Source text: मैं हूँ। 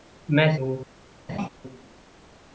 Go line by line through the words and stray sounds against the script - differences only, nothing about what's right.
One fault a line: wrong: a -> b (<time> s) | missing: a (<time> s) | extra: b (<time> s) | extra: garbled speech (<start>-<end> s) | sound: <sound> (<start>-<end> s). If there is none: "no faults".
sound: laugh (1.3-1.5 s)